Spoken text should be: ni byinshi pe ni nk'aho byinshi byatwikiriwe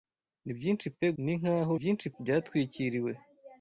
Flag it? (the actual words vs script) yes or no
no